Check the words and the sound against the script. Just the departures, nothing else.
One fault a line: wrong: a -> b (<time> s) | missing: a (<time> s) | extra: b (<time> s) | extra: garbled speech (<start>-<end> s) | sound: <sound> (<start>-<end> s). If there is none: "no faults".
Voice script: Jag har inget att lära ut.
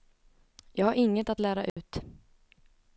sound: dropout (1.7-1.8 s)